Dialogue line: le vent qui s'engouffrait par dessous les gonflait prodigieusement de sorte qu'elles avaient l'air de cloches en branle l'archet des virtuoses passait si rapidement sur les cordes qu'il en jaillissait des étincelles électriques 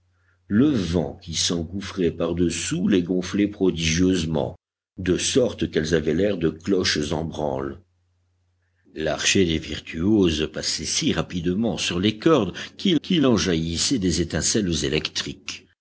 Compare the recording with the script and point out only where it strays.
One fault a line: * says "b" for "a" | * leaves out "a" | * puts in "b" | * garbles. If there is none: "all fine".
* puts in "qu'il"